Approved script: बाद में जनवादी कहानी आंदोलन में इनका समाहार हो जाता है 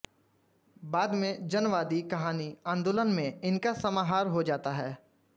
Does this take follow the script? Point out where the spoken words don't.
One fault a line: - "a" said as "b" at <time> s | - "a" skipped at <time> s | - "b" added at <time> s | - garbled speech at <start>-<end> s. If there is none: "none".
none